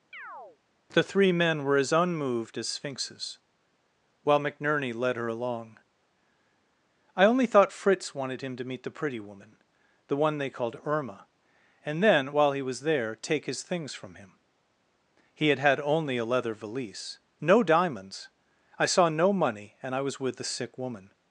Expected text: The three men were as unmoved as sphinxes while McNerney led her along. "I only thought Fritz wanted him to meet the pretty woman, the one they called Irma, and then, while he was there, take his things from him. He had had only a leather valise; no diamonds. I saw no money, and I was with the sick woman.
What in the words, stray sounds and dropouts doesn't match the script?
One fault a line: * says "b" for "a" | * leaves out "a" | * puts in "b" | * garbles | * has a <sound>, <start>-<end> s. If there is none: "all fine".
* has a chirp, 0.1-0.6 s